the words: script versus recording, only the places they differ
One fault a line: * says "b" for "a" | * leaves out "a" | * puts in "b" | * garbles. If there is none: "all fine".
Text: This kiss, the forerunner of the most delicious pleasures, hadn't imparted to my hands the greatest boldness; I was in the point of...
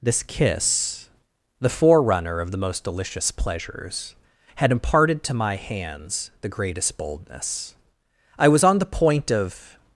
* says "had" for "hadn't"
* says "on" for "in"